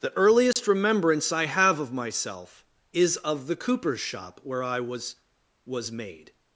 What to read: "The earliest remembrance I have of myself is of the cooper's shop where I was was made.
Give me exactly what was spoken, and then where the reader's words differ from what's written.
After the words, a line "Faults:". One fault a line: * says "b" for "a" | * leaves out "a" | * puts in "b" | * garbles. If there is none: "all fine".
"The earliest remembrance I have of myself is of the cooper's shop where I was was made.
Faults:
all fine